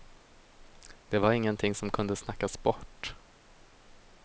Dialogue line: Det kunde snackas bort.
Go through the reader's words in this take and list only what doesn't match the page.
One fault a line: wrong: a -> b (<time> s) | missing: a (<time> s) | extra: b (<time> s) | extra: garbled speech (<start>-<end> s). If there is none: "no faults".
extra: var ingenting som (1.2 s)